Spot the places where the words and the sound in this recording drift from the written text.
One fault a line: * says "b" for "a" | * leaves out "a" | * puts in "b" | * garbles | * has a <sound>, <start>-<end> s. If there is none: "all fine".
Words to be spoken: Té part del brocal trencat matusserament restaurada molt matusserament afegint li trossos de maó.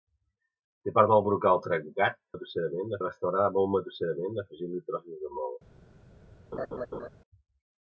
* has a laugh, 6.5-7.1 s